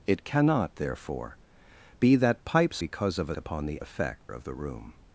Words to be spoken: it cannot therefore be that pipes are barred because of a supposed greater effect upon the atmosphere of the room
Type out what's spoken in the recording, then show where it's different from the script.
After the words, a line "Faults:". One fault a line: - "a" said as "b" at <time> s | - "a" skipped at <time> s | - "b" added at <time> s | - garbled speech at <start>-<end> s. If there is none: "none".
it cannot therefore be that pipes because of a upon the effect of the room
Faults:
- "are barred" skipped at 2.8 s
- "supposed greater effect" skipped at 3.3 s
- "atmosphere" said as "effect" at 3.8 s